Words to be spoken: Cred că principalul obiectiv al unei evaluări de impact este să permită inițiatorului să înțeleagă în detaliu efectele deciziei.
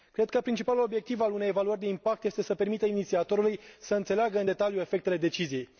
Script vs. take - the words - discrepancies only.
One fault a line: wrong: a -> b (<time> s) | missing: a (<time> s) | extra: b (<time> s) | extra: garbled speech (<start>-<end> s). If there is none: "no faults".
no faults